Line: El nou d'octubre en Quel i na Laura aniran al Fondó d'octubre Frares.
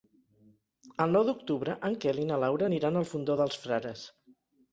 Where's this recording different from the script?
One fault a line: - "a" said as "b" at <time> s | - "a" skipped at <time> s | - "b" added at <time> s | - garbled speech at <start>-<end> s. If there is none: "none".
- "d'octubre" said as "dels" at 3.4 s